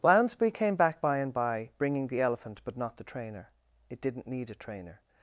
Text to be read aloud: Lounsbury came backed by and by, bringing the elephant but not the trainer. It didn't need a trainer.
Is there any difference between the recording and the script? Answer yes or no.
yes